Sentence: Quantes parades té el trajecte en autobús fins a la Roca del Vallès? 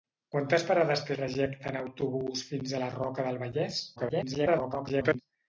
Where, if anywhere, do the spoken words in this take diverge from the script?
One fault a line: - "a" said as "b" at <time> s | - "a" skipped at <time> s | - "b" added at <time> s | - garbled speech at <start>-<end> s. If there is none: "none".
- "el" skipped at 1.1 s
- garbled speech at 4.0-5.2 s